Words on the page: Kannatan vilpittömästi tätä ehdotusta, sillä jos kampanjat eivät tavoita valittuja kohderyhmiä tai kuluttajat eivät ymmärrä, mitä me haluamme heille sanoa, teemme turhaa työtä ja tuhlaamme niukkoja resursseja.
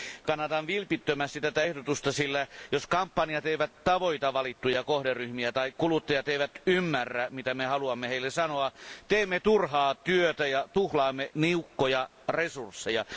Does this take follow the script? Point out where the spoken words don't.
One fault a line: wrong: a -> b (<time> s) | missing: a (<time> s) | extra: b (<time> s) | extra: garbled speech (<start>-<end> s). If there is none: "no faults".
no faults